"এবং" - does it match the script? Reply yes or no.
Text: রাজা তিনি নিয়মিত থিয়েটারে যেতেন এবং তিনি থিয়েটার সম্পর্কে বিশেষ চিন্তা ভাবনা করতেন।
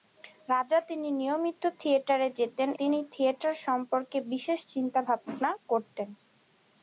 no